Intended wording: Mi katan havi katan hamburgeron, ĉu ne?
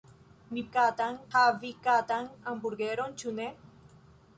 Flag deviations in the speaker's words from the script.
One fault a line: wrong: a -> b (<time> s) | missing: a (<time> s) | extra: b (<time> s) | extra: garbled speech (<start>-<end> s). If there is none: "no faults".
no faults